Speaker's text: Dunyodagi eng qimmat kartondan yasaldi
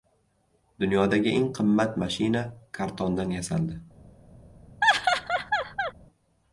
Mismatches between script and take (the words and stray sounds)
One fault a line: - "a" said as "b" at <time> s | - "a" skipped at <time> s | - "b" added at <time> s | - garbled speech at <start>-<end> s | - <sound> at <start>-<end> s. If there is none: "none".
- "mashina" added at 2.1 s
- laugh at 4.8-5.9 s